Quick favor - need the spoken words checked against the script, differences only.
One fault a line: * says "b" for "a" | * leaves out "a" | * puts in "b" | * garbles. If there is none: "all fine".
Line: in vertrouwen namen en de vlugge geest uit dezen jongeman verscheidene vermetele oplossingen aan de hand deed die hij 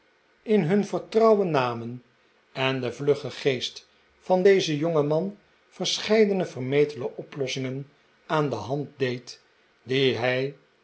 * puts in "hun"
* says "van" for "uit"